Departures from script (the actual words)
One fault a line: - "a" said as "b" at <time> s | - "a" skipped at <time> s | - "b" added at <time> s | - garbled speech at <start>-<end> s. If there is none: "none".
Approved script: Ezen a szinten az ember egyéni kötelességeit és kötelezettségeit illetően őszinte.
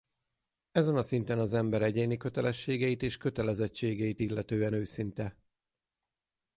none